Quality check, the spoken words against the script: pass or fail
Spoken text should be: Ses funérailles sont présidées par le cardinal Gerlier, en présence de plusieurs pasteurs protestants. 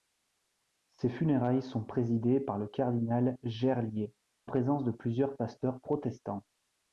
fail